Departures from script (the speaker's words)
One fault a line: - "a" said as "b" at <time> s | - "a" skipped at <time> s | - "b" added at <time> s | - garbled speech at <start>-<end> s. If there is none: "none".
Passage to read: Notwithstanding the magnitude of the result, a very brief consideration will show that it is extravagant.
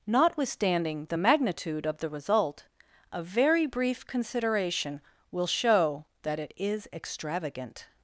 none